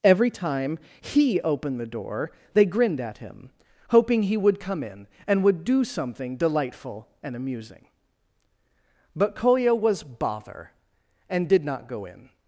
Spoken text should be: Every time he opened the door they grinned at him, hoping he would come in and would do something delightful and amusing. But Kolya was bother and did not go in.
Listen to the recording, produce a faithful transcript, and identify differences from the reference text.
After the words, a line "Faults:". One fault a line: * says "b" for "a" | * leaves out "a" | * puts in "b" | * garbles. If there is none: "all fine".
Every time he opened the door they grinned at him, hoping he would come in and would do something delightful and amusing. But Kolya was bother and did not go in.
Faults:
all fine